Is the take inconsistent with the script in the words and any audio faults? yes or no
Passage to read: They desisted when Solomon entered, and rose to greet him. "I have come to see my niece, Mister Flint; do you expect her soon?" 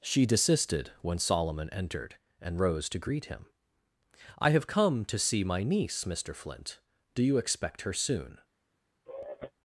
yes